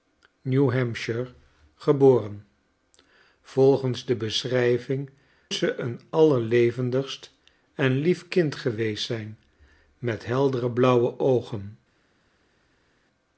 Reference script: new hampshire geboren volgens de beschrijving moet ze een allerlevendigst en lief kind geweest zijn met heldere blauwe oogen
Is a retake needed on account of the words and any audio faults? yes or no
yes